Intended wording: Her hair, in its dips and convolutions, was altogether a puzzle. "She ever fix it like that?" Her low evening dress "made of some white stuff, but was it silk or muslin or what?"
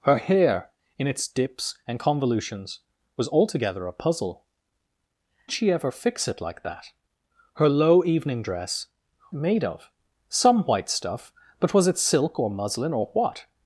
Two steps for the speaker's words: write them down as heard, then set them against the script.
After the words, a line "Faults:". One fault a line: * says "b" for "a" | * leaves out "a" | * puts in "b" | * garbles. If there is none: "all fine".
Her hair, in its dips and convolutions, was altogether a puzzle. "She ever fix it like that?" Her low evening dress "made of some white stuff, but was it silk or muslin or what?"
Faults:
all fine